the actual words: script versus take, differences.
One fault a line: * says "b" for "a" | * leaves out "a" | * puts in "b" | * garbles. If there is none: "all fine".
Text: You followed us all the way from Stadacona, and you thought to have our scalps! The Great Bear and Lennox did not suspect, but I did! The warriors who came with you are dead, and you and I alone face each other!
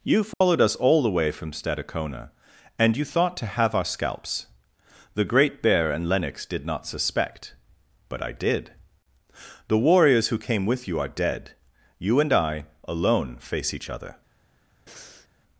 * leaves out "and"